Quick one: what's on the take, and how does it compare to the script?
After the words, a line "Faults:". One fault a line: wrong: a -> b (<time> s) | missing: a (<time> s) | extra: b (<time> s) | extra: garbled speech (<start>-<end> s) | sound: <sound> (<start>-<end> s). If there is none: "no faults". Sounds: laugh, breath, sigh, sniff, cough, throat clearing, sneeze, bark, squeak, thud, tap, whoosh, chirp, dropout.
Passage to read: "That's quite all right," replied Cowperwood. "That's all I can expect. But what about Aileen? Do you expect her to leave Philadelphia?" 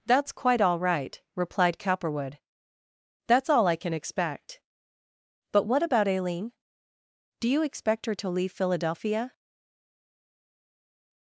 "That's quite all right," replied Cowperwood. "That's all I can expect. But what about Aileen? Do you expect her to leave Philadelphia?"
Faults:
no faults